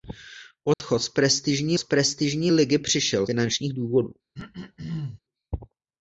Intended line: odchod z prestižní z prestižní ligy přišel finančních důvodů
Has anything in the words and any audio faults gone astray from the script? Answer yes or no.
yes